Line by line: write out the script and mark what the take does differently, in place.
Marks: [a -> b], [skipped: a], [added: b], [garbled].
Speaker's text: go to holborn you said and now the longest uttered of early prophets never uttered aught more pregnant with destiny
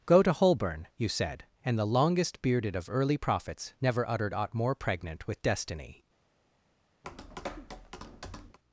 go to holborn you said and [skipped: now] the longest [uttered -> bearded] of early prophets never uttered aught more pregnant with destiny